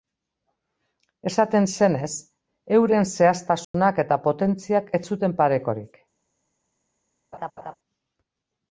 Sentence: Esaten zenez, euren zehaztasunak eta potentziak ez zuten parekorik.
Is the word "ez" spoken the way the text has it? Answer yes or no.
yes